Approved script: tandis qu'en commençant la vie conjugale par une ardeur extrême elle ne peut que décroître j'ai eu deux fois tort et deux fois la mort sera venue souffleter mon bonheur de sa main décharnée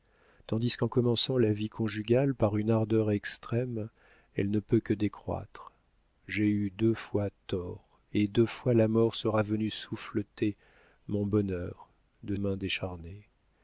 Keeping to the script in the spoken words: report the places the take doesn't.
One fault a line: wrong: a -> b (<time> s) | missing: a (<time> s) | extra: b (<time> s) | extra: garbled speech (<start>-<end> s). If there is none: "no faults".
missing: sa (12.3 s)